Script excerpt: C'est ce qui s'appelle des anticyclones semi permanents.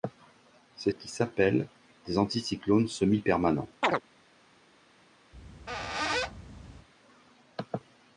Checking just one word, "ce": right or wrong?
wrong